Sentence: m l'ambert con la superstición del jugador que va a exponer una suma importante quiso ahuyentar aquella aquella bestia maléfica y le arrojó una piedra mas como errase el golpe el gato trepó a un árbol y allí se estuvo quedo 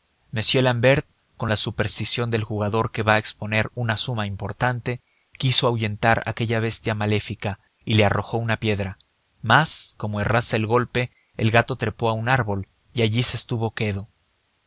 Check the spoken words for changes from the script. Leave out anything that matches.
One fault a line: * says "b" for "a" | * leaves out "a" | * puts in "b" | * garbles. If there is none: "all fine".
* leaves out "aquella"